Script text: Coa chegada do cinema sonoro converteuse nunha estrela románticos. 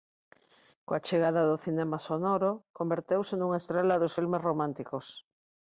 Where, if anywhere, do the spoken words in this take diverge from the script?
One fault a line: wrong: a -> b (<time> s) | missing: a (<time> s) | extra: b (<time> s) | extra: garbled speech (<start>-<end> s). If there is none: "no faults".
extra: dos filmes (4.0 s)